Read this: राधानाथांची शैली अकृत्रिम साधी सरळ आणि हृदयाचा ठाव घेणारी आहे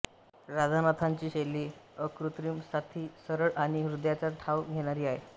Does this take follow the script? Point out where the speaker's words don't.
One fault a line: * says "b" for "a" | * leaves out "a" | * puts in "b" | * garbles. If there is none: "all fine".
all fine